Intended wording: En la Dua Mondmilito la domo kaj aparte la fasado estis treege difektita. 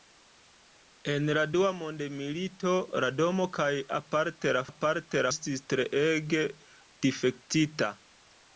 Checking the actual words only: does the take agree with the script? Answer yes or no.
no